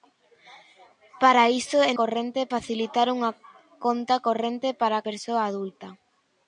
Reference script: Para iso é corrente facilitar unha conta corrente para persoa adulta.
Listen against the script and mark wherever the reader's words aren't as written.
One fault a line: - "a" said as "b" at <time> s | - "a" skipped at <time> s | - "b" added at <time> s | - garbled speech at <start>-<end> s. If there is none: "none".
none